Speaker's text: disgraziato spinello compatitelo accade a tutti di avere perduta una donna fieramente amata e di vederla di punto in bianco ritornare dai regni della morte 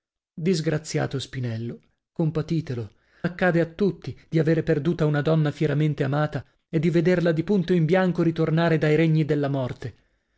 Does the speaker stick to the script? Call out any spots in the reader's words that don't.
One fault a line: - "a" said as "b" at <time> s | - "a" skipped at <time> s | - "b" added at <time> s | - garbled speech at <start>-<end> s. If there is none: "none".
none